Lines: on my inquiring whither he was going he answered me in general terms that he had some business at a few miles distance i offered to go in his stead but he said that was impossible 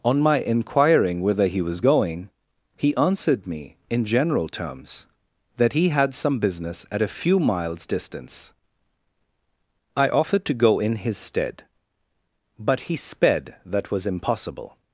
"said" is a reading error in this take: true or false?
true